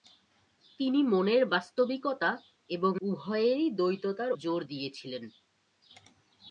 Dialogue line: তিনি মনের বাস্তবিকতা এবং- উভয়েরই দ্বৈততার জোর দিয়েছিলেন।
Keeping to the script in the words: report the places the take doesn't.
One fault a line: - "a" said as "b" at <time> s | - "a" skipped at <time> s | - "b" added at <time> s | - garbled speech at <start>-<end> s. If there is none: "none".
none